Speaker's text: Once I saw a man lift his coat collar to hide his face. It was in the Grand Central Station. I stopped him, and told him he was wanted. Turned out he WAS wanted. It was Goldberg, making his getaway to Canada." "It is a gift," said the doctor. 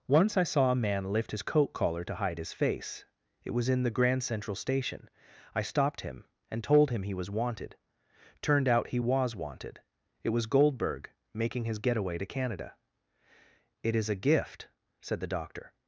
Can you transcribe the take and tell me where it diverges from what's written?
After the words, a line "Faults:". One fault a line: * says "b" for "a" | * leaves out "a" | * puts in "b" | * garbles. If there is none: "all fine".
Once I saw a man lift his coat collar to hide his face. It was in the Grand Central Station. I stopped him, and told him he was wanted. Turned out he WAS wanted. It was Goldberg, making his getaway to Canada." "It is a gift," said the doctor.
Faults:
all fine